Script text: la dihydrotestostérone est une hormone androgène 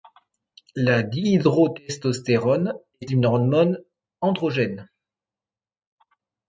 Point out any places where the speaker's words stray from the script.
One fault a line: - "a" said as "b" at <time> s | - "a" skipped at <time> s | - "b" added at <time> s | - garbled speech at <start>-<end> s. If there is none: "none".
none